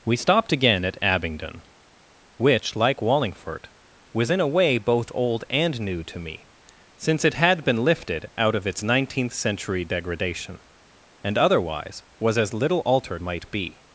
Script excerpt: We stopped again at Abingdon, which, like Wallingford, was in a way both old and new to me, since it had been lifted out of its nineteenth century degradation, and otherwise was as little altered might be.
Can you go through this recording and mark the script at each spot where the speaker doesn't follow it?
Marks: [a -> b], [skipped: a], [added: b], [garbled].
We stopped again at Abingdon, which, like Wallingford, was in a way both old and new to me, since it had been lifted out of its nineteenth century degradation, and otherwise was as little altered might be.